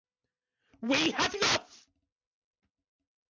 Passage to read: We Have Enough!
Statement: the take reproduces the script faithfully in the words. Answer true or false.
true